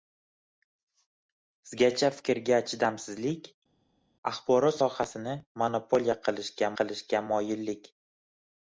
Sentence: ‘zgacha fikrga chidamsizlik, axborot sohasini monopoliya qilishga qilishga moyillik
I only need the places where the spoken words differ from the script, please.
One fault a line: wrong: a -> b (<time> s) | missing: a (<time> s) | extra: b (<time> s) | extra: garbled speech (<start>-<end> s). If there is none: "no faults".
no faults